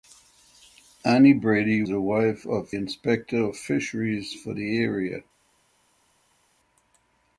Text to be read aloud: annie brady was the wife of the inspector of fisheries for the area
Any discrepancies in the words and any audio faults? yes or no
yes